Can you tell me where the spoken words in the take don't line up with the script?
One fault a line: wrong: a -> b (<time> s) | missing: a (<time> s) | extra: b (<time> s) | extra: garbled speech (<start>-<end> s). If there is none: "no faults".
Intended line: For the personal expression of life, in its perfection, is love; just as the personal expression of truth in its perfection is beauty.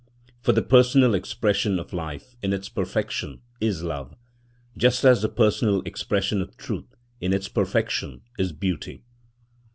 no faults